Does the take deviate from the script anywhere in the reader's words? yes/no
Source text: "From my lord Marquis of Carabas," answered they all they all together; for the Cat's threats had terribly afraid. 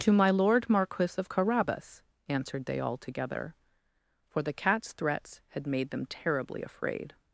yes